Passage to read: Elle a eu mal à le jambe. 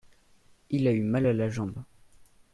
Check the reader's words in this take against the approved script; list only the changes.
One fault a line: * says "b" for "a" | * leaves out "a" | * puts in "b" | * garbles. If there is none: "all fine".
* says "Il" for "Elle"
* says "la" for "le"